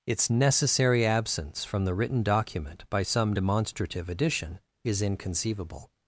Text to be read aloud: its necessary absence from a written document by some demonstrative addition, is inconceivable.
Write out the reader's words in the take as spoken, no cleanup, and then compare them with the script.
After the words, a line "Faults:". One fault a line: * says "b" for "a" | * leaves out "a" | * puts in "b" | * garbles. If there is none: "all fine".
its necessary absence from the written document by some demonstrative addition, is inconceivable.
Faults:
* says "the" for "a"